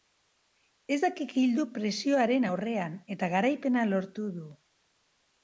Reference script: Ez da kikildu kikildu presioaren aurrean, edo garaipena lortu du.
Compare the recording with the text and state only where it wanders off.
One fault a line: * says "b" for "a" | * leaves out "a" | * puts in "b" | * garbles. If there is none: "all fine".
* leaves out "kikildu"
* says "eta" for "edo"